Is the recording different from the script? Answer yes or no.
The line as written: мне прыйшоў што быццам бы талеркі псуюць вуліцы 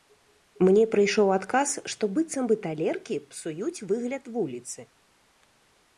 yes